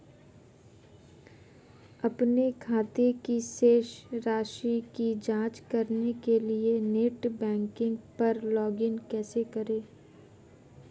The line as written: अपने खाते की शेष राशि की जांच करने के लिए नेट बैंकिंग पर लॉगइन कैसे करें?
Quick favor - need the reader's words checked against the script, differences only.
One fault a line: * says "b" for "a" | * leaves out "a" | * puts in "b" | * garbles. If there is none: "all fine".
all fine